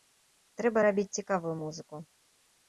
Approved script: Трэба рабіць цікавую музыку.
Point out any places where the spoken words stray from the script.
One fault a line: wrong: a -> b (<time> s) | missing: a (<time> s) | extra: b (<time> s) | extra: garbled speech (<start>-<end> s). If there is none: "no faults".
no faults